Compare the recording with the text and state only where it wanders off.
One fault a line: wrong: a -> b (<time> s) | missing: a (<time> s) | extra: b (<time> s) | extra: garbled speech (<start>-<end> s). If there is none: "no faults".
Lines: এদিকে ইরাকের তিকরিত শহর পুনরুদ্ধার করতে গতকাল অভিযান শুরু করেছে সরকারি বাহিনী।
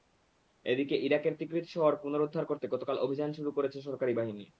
no faults